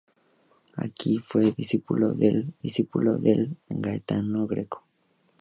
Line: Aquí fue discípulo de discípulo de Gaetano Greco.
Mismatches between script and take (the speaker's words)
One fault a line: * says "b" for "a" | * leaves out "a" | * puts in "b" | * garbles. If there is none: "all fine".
all fine